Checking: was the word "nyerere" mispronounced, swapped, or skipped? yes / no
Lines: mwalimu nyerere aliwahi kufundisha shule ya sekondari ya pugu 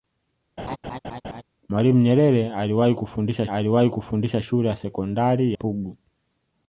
no